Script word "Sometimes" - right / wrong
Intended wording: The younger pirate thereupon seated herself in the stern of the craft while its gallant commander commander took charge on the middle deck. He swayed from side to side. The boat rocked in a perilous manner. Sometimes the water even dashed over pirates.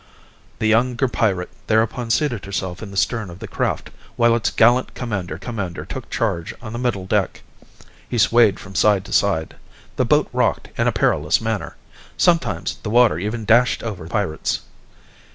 right